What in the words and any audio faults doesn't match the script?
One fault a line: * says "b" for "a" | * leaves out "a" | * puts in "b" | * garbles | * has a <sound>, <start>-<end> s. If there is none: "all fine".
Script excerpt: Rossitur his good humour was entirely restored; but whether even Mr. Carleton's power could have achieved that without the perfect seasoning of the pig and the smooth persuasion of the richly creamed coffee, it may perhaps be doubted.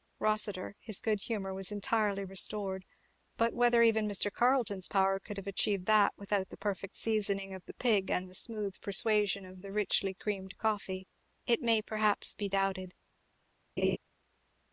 * has a laugh, 13.8-14.0 s